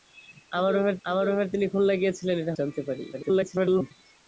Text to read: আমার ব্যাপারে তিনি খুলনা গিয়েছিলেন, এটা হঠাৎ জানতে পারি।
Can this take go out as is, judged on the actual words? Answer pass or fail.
fail